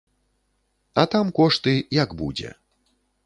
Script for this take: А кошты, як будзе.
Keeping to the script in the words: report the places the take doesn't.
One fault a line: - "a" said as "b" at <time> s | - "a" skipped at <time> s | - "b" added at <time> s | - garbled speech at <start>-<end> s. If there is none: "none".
- "там" added at 1.1 s